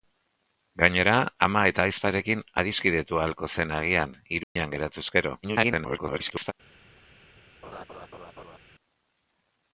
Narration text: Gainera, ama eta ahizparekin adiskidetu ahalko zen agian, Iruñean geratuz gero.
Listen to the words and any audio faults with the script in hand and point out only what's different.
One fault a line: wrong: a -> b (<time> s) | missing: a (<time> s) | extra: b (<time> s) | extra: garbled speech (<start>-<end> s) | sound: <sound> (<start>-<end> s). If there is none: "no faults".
sound: dropout (4.4-4.6 s)
extra: garbled speech (5.4-6.5 s)
sound: laugh (7.6-8.6 s)